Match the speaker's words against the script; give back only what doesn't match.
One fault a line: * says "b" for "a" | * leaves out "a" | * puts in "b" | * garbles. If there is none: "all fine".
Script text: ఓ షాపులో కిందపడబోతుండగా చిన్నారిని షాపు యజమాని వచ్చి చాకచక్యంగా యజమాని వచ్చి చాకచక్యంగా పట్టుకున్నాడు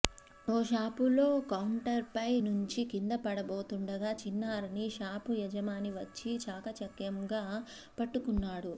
* puts in "కౌంటర్పై నుంచి"
* leaves out "యజమాని వచ్చి చాకచక్యంగా"